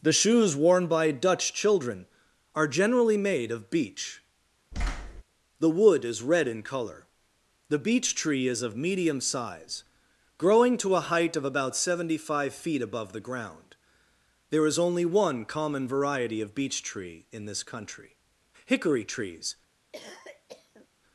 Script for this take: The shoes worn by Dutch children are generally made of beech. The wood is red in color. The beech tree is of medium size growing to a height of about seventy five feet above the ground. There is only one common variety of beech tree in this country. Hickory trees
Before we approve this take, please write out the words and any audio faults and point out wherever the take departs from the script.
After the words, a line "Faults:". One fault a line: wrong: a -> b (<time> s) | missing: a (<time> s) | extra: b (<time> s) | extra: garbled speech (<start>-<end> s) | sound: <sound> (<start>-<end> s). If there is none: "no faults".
The shoes worn by Dutch children are generally made of beech. The wood is red in color. The beech tree is of medium size growing to a height of about seventy five feet above the ground. There is only one common variety of beech tree in this country. Hickory trees
Faults:
sound: thud (4.7-5.2 s)
sound: cough (19.9-20.9 s)